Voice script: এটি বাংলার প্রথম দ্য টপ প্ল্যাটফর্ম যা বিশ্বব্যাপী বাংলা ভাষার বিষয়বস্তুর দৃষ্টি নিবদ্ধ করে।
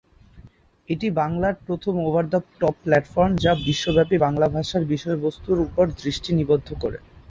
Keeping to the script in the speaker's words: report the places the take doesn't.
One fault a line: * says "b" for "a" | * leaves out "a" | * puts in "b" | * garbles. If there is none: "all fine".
* puts in "ওভার"
* puts in "উপর"